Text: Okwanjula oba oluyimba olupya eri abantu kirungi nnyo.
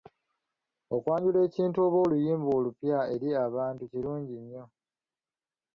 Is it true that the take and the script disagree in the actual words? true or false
true